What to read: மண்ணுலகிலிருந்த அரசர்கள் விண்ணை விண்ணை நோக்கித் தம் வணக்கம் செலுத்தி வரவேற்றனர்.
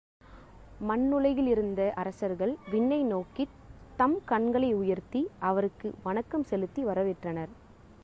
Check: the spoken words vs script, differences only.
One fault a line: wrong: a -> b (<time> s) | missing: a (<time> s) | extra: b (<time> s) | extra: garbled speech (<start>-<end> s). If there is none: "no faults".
missing: விண்ணை (3.0 s)
extra: கண்களை உயர்த்தி அவருக்கு (4.2 s)